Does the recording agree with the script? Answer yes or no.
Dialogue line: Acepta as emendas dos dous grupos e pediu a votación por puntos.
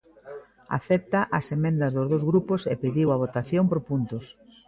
yes